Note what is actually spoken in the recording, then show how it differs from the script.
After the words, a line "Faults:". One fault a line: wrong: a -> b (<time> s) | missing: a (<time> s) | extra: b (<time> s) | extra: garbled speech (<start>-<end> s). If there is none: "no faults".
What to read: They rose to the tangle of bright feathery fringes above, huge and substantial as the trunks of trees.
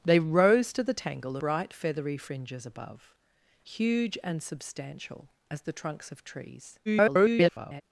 They rose to the tangle bright feathery fringes above, huge and substantial as the trunks of trees. [garbled]
Faults:
missing: of (1.4 s)
extra: garbled speech (6.9-7.8 s)